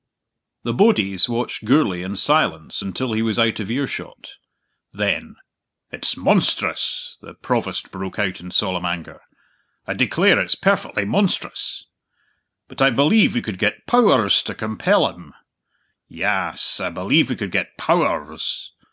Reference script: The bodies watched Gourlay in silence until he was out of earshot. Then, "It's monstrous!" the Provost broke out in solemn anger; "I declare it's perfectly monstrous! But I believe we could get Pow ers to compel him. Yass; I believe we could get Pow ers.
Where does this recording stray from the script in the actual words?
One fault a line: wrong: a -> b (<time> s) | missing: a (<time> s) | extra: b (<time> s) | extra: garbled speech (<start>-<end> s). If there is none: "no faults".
no faults